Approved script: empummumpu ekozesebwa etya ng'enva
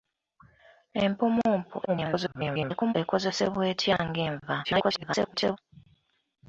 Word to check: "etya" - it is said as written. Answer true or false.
true